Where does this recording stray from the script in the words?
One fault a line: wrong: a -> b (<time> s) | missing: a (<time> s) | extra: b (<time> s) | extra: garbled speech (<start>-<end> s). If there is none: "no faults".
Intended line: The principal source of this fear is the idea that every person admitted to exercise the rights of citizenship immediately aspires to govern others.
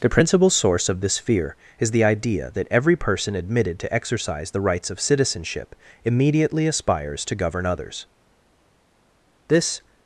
extra: This (9.5 s)